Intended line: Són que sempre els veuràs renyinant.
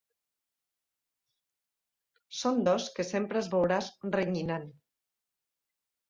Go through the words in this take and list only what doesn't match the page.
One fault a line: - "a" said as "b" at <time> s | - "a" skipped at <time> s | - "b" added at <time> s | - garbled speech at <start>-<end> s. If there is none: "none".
- "dos" added at 2.7 s